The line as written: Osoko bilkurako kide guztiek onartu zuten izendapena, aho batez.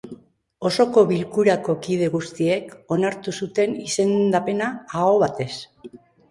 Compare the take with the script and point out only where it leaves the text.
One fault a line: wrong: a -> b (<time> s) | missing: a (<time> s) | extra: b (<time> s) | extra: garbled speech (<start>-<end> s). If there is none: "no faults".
no faults